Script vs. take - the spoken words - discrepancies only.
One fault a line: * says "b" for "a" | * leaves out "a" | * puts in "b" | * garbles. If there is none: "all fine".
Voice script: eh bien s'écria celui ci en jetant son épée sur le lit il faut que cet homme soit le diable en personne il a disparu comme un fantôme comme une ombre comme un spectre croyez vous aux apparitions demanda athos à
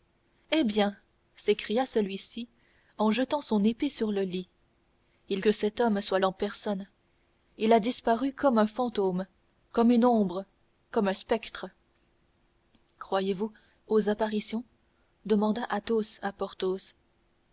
* leaves out "faut"
* leaves out "le diable"